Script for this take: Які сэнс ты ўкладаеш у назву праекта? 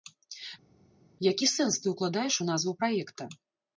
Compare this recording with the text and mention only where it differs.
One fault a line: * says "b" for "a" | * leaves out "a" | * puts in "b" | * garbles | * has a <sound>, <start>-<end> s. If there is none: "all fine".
all fine